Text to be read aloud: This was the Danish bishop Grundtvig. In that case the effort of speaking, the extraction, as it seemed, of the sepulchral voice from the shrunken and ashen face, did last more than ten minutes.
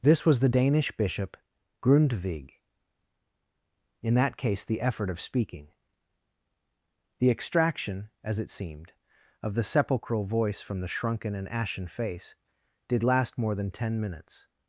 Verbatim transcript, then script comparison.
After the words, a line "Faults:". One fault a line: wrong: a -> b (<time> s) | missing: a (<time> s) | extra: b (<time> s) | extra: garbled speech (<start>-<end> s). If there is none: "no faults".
This was the Danish bishop Grundtvig. In that case the effort of speaking, the extraction, as it seemed, of the sepulchral voice from the shrunken and ashen face, did last more than ten minutes.
Faults:
no faults